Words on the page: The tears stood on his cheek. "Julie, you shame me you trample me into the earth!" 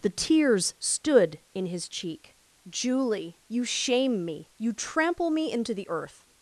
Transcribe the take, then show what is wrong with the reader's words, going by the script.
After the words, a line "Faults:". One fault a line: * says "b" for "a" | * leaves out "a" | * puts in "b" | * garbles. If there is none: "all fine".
The tears stood in his cheek. "Julie, you shame me you trample me into the earth!"
Faults:
* says "in" for "on"